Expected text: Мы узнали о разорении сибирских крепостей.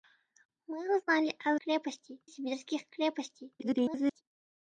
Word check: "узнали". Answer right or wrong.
right